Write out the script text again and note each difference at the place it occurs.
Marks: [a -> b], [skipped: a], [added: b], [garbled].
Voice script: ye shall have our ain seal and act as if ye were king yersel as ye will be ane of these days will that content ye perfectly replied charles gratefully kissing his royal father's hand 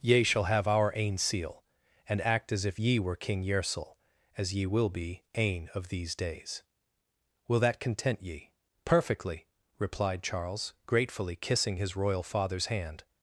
ye shall have our ain seal and act as if ye were king yersel as ye will be ane of these days will that content ye perfectly replied charles gratefully kissing his royal father's hand